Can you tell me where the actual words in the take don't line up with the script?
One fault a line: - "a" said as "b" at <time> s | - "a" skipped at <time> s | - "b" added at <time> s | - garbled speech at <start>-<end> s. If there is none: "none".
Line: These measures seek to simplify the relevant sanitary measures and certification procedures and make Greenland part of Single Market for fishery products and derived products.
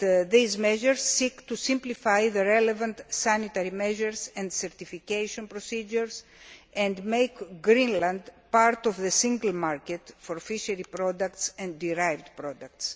- "the" added at 9.0 s